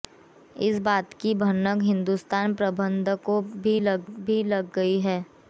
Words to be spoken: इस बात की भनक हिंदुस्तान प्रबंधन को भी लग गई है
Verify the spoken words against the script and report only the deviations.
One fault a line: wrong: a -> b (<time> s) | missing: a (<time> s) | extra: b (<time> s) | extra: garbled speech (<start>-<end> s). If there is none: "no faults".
extra: भी लग (4.0 s)